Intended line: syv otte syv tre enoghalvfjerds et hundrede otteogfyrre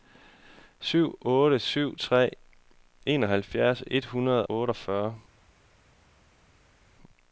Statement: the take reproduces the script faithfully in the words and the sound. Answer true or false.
true